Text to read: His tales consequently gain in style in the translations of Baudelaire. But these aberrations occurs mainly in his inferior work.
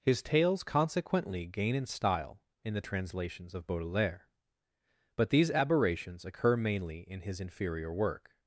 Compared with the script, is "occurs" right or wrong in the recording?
wrong